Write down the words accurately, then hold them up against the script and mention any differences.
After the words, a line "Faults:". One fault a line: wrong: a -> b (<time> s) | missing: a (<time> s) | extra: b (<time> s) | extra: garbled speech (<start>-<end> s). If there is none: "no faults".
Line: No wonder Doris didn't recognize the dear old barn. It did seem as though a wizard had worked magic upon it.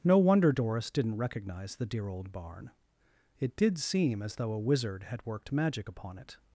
No wonder Doris didn't recognize the dear old barn. It did seem as though a wizard had worked magic upon it.
Faults:
no faults